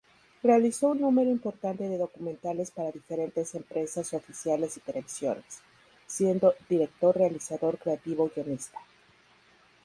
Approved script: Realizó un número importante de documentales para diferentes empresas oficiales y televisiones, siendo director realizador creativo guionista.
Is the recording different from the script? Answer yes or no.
no